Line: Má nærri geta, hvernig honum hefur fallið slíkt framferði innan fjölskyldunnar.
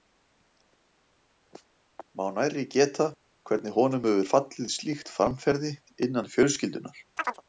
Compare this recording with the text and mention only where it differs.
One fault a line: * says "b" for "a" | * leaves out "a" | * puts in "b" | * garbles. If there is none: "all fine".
all fine